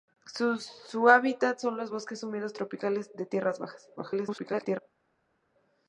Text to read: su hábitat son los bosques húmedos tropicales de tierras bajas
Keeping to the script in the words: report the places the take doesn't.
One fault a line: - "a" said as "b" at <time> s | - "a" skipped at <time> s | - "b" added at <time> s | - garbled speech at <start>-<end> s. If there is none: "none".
- garbled speech at 4.0-4.8 s